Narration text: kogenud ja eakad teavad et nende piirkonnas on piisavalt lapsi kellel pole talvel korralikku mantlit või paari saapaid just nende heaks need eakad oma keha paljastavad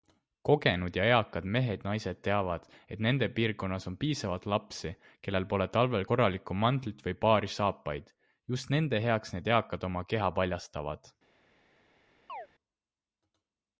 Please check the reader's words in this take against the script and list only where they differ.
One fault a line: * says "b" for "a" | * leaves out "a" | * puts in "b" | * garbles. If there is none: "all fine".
* puts in "mehed naised"